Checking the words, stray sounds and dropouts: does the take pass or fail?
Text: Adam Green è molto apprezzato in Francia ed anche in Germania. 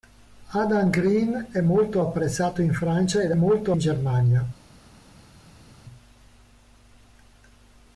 fail